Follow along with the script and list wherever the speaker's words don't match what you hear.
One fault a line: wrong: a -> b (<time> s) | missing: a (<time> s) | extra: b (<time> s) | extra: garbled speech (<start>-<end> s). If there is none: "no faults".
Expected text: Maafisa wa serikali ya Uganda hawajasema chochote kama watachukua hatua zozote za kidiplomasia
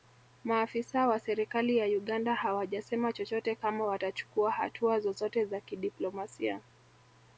no faults